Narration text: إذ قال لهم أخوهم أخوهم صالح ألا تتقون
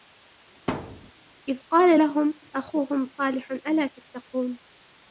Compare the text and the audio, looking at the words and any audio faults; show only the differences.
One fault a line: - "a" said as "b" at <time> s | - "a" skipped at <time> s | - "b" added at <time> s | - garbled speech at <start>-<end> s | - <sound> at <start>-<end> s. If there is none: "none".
- thud at 0.7-1.1 s
- "أخوهم" skipped at 3.1 s